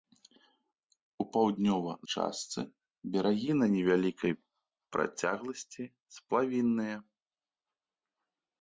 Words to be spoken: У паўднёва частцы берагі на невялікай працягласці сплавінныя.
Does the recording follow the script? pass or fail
pass